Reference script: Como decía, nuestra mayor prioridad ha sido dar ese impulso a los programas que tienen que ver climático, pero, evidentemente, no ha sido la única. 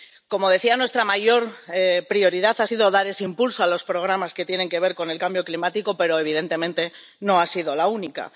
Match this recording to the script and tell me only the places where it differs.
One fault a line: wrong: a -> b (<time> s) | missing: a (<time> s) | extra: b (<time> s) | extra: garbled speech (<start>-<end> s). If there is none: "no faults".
extra: con el cambio (4.9 s)